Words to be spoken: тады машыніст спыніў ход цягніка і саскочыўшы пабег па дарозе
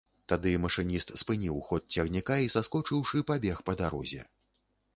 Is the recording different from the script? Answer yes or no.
no